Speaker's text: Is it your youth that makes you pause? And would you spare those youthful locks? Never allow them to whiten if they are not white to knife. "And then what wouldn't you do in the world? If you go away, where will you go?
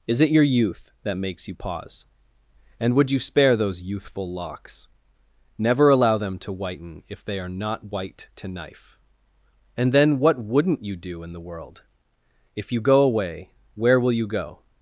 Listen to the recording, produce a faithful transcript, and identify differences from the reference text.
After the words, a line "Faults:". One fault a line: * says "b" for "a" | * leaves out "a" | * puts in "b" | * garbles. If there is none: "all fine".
Is it your youth that makes you pause? And would you spare those youthful locks? Never allow them to whiten if they are not white to knife. "And then what wouldn't you do in the world? If you go away, where will you go?
Faults:
all fine